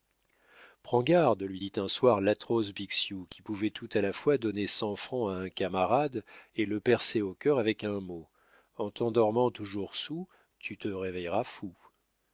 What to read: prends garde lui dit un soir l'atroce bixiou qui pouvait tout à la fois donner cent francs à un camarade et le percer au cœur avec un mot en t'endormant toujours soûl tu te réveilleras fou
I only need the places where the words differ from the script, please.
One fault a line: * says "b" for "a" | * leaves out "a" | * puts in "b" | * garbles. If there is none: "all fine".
all fine